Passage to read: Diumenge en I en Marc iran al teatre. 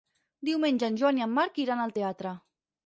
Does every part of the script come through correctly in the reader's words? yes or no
no